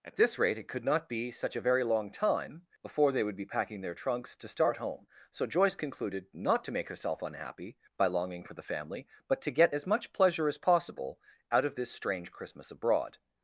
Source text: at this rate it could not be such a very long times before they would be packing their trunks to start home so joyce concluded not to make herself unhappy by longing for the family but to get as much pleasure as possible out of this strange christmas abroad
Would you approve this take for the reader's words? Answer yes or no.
no